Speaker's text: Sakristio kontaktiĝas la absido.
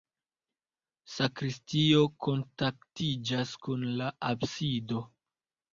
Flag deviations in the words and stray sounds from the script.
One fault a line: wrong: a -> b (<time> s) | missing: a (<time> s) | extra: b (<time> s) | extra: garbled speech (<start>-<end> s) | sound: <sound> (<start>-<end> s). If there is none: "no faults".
extra: kun (3.7 s)